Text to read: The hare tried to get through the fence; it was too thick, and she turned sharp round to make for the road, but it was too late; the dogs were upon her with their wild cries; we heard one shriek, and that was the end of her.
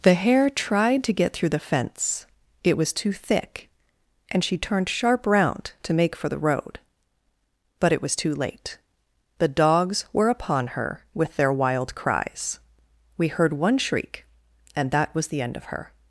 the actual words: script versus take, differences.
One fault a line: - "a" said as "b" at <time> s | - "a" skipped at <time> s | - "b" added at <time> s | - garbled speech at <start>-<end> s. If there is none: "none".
none